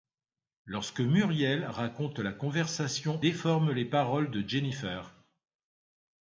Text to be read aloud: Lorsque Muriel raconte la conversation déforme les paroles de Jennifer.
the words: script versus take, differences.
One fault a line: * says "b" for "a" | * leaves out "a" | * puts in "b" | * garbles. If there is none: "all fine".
all fine